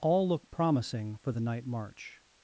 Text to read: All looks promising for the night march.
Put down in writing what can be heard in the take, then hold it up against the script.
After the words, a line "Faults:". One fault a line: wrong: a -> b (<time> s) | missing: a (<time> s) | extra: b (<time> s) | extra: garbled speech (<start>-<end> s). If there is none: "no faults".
All look promising for the night march.
Faults:
wrong: looks -> look (0.3 s)